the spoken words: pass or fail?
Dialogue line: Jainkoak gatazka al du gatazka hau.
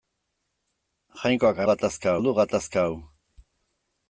pass